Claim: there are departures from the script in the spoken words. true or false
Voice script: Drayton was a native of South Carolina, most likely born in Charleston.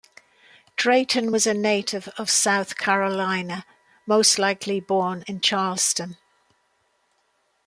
false